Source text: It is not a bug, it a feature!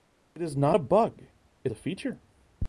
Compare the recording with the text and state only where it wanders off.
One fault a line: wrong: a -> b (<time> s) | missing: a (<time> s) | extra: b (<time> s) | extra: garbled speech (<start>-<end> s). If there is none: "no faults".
no faults